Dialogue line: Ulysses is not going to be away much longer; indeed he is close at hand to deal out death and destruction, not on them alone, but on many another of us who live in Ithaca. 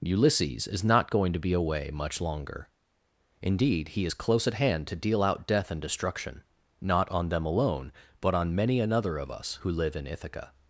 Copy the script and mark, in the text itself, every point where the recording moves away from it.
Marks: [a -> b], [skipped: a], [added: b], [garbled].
Ulysses is not going to be away much longer; indeed he is close at hand to deal out death and destruction, not on them alone, but on many another of us who live in Ithaca.